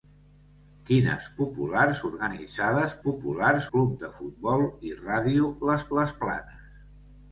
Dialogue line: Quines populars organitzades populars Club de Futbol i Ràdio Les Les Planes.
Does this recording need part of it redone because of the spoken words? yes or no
no